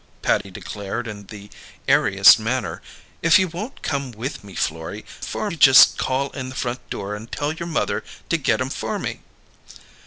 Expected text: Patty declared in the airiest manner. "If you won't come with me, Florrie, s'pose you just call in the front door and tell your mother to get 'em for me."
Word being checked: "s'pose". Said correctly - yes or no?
no